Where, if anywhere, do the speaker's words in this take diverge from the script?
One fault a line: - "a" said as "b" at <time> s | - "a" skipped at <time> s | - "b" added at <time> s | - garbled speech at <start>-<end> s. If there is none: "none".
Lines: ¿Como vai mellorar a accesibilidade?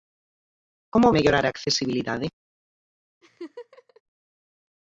- "vai" skipped at 1.1 s